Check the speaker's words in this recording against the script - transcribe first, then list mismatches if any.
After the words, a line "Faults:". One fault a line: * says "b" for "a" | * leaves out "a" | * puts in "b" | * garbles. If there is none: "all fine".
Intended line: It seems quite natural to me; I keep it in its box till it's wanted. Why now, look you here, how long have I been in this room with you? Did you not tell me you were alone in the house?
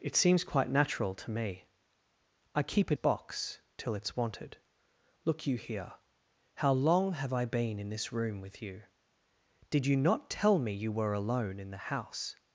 It seems quite natural to me; I keep it box till it's wanted. Look you here, how long have I been in this room with you? Did you not tell me you were alone in the house?
Faults:
* leaves out "in its"
* leaves out "Why now"